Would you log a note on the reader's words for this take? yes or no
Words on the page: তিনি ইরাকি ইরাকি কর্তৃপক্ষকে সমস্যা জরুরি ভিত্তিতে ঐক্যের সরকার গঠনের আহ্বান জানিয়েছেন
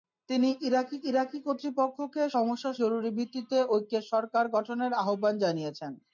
no